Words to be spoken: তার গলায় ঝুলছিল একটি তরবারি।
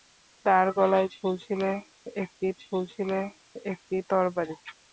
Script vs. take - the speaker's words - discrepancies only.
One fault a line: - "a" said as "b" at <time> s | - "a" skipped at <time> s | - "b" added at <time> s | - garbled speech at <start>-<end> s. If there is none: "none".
- "ঝুলছিল একটি" added at 2.6 s